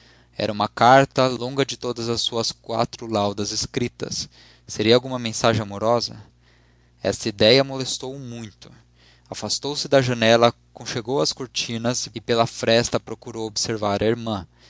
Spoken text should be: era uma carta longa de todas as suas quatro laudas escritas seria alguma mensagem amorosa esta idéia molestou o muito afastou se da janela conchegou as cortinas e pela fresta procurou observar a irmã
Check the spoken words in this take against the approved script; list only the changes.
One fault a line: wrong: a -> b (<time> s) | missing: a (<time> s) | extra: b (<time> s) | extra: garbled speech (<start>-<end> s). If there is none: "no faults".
no faults